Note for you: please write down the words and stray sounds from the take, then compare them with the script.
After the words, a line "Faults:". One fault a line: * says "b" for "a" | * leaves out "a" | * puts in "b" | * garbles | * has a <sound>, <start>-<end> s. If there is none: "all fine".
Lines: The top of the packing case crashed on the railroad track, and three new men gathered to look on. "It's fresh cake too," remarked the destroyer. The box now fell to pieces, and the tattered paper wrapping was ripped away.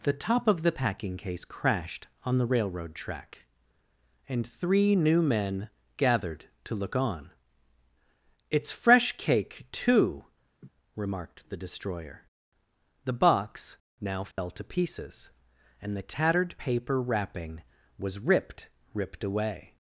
The top of the packing case crashed on the railroad track, and three new men gathered to look on. "It's fresh cake too," remarked the destroyer. The box now fell to pieces, and the tattered paper wrapping was ripped ripped away.
Faults:
* has a laugh, 10.6-10.7 s
* has a dropout, 14.3-14.4 s
* puts in "ripped"